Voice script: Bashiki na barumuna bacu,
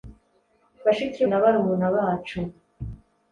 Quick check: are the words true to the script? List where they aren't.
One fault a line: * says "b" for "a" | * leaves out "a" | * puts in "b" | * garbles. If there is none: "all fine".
all fine